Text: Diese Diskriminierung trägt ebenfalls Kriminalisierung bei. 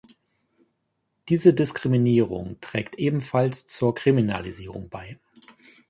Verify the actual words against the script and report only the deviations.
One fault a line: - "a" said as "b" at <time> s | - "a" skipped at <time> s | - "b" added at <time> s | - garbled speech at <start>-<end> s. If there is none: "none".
- "zur" added at 3.7 s